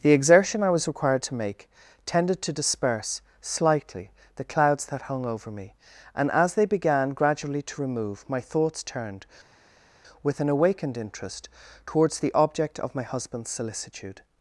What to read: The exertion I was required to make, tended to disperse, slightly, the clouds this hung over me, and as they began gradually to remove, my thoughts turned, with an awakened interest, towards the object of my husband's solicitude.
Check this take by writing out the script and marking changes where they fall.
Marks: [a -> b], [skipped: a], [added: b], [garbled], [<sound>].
The exertion I was required to make, tended to disperse, slightly, the clouds [this -> that] hung over me, and as they began gradually to remove, my thoughts turned, with an awakened interest, towards the object of my husband's solicitude.